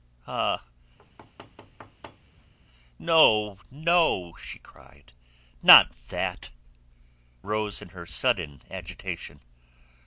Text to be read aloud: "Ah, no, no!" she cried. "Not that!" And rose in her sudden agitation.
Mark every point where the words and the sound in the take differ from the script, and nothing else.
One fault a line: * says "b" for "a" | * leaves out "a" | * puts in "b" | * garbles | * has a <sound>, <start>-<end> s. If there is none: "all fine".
* has a thud, 1.0-2.5 s
* leaves out "And"